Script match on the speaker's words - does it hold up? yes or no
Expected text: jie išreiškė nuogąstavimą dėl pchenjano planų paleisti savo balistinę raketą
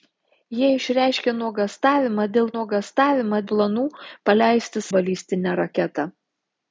no